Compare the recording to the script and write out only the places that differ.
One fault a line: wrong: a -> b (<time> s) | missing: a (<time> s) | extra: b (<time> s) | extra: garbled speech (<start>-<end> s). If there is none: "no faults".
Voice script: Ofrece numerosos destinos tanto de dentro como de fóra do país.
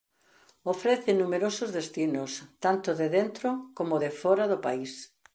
no faults